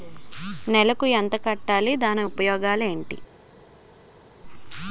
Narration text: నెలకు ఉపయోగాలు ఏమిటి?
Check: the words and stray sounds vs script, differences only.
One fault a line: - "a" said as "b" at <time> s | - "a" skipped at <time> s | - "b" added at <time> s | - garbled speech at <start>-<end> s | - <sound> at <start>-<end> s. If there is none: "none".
- "ఎంత కట్టాలి దాని" added at 1.1 s